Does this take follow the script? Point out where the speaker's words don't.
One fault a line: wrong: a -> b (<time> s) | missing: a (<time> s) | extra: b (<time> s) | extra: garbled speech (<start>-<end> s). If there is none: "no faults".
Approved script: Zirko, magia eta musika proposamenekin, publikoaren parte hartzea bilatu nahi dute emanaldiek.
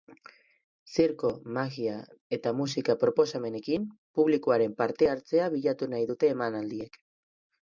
no faults